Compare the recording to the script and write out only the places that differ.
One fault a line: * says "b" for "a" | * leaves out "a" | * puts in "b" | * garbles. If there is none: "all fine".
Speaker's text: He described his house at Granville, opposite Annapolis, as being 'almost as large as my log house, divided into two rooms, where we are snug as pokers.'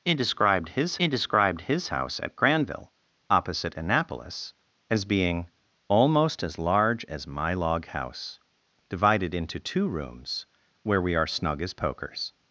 * puts in "he described his"